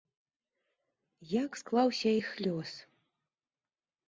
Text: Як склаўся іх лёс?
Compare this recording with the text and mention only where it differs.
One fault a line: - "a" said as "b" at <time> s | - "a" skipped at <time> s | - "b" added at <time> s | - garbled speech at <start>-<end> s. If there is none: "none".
none